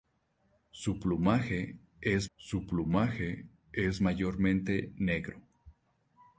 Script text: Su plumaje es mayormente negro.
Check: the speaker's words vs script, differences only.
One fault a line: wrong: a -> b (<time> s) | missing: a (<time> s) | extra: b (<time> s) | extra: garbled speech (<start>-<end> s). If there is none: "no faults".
extra: su plumaje es (2.4 s)